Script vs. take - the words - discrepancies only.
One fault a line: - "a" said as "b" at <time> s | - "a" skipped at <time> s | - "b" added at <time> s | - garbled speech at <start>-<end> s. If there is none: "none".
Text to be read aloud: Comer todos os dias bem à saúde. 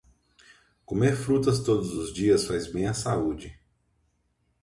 - "frutas" added at 1.1 s
- "faz" added at 2.5 s